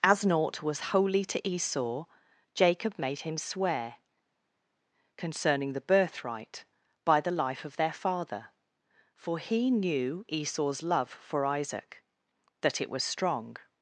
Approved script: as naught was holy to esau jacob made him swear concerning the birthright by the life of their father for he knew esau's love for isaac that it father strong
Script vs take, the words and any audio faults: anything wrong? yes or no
yes